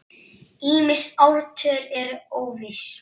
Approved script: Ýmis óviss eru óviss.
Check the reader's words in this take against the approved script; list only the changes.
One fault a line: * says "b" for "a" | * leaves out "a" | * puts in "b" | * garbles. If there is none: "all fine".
* says "ártöl" for "óviss"